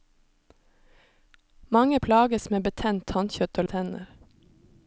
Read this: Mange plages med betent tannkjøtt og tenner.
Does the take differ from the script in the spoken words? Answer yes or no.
no